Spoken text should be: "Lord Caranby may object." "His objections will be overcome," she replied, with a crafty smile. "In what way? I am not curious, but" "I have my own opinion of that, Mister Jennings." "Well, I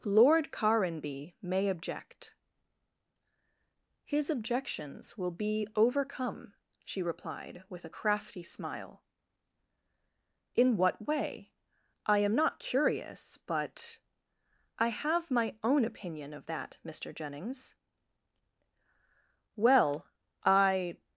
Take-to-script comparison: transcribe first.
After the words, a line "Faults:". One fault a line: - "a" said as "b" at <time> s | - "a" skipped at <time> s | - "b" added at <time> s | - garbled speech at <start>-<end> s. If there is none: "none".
"Lord Caranby may object." "His objections will be overcome," she replied, with a crafty smile. "In what way? I am not curious, but" "I have my own opinion of that, Mister Jennings." "Well, I
Faults:
none